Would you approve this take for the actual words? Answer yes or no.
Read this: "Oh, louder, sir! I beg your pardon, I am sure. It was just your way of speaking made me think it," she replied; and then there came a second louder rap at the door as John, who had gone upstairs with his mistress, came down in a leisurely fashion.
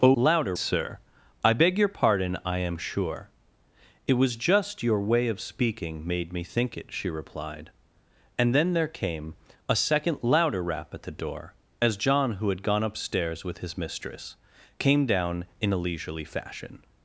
yes